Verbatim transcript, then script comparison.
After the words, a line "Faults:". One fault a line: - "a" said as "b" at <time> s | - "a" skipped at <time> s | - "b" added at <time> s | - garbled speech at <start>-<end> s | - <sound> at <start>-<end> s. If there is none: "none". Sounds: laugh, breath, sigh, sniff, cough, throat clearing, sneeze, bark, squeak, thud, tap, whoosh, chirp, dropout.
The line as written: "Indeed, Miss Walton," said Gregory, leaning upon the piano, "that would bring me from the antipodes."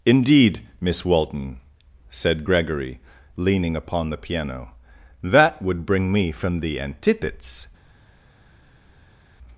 "Indeed, Miss Walton," said Gregory, leaning upon the piano, "that would bring me from the antipodes."
Faults:
none